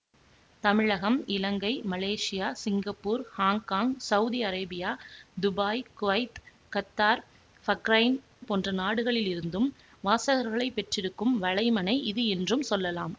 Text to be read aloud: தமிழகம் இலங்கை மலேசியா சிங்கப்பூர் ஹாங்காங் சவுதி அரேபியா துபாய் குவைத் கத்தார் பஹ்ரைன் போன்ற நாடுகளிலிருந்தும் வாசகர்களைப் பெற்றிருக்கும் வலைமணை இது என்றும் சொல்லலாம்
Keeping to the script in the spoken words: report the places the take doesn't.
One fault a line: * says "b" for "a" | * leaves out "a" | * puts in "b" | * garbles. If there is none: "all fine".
all fine